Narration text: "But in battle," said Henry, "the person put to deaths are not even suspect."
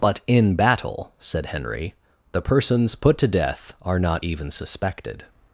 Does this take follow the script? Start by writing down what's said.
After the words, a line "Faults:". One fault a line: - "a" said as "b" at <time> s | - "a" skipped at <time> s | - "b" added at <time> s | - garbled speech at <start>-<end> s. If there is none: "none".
"But in battle," said Henry, "the persons put to death are not even suspected."
Faults:
- "person" said as "persons" at 2.4 s
- "deaths" said as "death" at 3.3 s
- "suspect" said as "suspected" at 4.5 s